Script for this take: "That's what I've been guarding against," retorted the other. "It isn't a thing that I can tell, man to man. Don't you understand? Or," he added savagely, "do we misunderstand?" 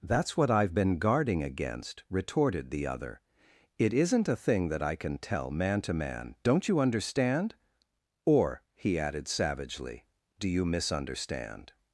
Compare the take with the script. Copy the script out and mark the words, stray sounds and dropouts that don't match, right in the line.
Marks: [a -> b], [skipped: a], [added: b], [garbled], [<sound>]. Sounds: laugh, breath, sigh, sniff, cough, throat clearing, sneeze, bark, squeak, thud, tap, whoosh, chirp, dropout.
"That's what I've been guarding against," retorted the other. "It isn't a thing that I can tell, man to man. Don't you understand? Or," he added savagely, "do [we -> you] misunderstand?"